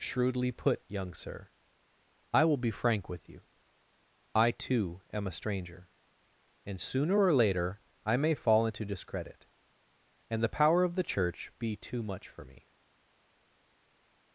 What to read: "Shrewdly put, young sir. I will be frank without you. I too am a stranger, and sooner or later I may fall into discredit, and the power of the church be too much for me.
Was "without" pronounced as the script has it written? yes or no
no